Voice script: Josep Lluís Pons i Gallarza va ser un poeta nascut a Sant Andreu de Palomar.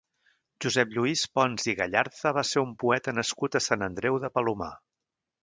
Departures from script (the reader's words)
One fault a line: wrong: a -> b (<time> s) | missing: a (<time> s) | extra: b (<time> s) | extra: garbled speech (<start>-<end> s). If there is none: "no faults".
no faults